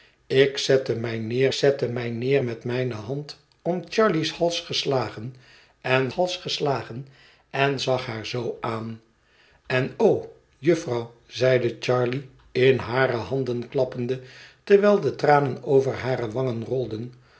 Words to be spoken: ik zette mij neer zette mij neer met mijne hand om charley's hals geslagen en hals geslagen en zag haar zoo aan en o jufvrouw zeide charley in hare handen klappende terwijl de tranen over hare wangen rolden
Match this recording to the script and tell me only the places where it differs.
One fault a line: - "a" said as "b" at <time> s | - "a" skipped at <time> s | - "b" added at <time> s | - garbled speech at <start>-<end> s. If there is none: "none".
none